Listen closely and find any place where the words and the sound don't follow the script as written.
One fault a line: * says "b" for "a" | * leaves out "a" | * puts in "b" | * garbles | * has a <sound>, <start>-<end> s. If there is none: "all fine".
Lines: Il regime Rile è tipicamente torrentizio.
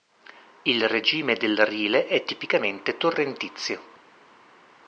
* puts in "del"